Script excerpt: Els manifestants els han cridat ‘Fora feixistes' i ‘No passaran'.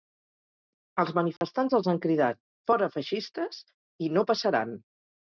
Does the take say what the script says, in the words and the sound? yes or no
no